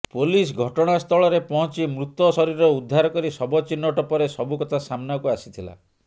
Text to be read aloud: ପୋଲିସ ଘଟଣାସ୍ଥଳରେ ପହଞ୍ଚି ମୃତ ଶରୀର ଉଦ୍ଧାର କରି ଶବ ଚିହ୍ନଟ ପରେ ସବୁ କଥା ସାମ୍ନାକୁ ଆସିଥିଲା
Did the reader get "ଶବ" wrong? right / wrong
right